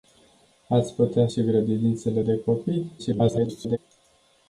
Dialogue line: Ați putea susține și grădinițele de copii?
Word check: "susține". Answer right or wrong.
wrong